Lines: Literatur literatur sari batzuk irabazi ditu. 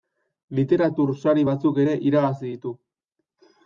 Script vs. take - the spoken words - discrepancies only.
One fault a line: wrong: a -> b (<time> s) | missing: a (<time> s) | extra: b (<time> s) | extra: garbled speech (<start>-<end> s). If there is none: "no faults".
missing: literatur (1.1 s)
extra: ere (1.8 s)